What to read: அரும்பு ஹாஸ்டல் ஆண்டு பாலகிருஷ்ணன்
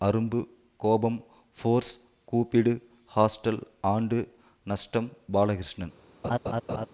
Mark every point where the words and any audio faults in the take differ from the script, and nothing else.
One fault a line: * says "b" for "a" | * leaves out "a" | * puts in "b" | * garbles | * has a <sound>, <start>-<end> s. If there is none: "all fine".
* puts in "கோபம் ஃபோர்ஸ் கூப்பிடு"
* puts in "நஷ்டம்"
* has a laugh, 6.2-6.9 s